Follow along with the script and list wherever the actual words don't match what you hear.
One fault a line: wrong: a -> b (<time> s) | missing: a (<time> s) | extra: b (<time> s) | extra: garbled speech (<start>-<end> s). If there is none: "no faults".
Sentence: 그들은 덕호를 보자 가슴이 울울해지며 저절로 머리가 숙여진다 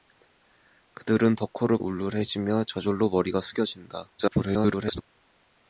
missing: 보자 가슴이 (1.8 s)
extra: garbled speech (4.2-5.0 s)